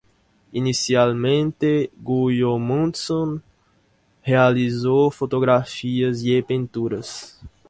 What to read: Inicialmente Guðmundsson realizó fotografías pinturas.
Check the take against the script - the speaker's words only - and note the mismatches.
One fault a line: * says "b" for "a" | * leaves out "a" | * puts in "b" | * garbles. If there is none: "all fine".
* puts in "y"